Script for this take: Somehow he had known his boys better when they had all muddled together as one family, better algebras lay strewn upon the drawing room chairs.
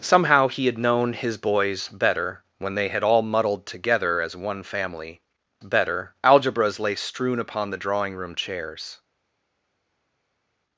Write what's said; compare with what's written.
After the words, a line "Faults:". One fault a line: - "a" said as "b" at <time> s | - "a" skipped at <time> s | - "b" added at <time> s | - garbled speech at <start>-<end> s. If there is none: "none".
Somehow he had known his boys better when they had all muddled together as one family, better algebras lay strewn upon the drawing room chairs.
Faults:
none